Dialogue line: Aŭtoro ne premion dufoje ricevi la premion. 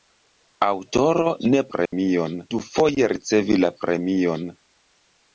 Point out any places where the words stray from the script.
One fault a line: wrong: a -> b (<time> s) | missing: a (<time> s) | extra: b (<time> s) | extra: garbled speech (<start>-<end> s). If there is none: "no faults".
no faults